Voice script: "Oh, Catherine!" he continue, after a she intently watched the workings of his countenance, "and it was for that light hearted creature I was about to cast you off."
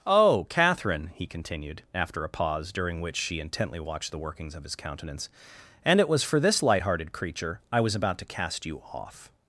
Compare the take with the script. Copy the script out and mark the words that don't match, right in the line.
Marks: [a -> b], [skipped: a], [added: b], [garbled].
"Oh, Catherine!" he [continue, -> continued] after a [added: pause during which] she intently watched the workings of his countenance, "and it was for [that -> this] light hearted creature I was about to cast you off."